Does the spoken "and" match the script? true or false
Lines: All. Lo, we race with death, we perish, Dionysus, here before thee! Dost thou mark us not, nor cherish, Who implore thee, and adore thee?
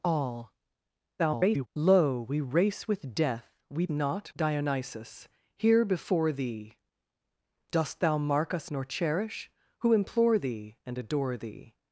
true